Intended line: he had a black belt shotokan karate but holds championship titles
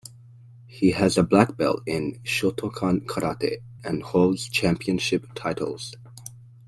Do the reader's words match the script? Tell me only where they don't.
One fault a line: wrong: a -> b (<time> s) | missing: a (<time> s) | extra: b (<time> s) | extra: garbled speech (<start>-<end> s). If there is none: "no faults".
wrong: had -> has (0.9 s)
extra: in (1.9 s)
wrong: but -> and (3.8 s)